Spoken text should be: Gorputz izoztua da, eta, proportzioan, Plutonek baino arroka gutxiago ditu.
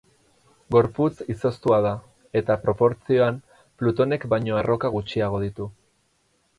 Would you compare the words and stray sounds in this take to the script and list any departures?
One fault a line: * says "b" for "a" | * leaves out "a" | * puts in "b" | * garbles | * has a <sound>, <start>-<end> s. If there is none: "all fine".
all fine